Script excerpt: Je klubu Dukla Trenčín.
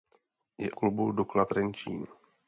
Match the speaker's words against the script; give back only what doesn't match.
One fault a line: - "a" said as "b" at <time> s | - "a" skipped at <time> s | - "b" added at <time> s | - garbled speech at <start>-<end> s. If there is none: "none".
none